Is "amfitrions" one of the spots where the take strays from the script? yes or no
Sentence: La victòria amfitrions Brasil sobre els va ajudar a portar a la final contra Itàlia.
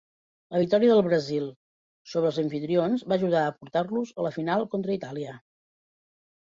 yes